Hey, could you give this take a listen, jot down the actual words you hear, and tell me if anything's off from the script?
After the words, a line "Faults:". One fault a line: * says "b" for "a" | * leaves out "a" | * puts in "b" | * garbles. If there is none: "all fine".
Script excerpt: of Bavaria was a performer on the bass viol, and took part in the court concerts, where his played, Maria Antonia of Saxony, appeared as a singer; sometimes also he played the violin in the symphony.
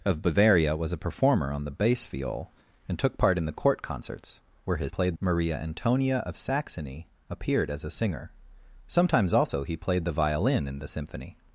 of Bavaria was a performer on the bass viol, and took part in the court concerts, where his played, Maria Antonia of Saxony, appeared as a singer; sometimes also he played the violin in the symphony.
Faults:
all fine